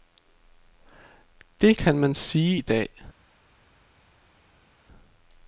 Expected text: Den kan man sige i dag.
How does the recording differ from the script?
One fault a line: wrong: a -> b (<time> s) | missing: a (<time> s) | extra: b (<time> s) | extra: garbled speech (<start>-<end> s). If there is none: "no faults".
wrong: Den -> Det (1.6 s)